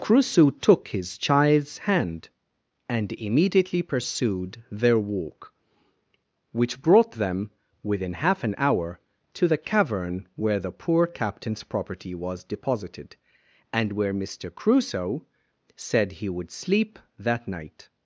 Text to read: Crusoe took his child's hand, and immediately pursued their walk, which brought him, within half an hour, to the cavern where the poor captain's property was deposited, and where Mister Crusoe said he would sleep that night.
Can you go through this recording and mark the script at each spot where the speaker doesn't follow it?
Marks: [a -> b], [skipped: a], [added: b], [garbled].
Crusoe took his child's hand, and immediately pursued their walk, which brought [him, -> them] within half an hour, to the cavern where the poor captain's property was deposited, and where Mister Crusoe said he would sleep that night.